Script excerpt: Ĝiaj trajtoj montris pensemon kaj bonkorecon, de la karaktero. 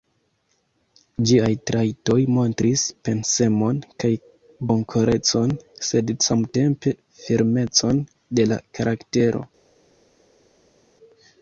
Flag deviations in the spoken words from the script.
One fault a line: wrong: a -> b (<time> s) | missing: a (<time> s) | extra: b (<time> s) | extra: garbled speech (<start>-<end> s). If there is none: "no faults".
extra: sed samtempe firmecon (5.9 s)